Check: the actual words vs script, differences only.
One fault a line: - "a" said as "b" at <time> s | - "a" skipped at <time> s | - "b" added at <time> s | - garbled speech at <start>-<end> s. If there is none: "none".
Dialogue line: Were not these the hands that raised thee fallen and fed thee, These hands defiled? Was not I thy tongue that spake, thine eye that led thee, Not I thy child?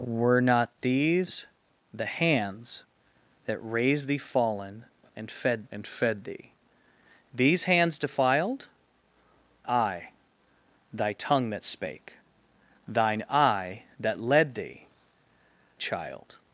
- "and fed" added at 5.7 s
- "Was not" skipped at 8.7 s
- "Not I thy" skipped at 14.9 s